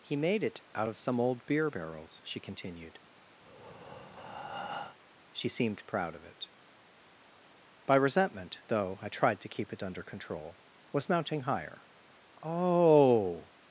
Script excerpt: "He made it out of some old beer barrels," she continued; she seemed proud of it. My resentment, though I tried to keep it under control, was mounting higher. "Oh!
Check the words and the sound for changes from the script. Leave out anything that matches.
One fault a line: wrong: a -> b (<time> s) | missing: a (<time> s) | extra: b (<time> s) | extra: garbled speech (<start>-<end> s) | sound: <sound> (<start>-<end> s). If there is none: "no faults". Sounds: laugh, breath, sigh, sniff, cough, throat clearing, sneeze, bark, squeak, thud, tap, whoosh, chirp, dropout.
sound: breath (3.4-5.0 s)
wrong: My -> By (7.9 s)